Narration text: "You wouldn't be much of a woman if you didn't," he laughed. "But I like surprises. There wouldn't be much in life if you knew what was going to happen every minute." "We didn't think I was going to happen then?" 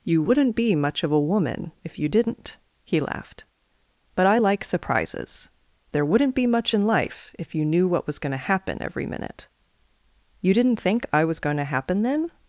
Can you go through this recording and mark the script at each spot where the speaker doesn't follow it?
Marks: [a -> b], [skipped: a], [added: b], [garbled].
"You wouldn't be much of a woman if you didn't," he laughed. "But I like surprises. There wouldn't be much in life if you knew what was going to happen every minute." ["We -> You] didn't think I was going to happen then?"